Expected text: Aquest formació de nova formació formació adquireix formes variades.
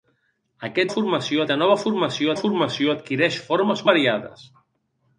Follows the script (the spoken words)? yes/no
yes